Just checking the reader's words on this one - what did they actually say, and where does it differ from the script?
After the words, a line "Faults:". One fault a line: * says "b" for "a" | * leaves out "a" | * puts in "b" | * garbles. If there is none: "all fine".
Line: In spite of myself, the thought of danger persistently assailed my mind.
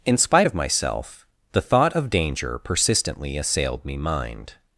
In spite of myself, the thought of danger persistently assailed me mind.
Faults:
* says "me" for "my"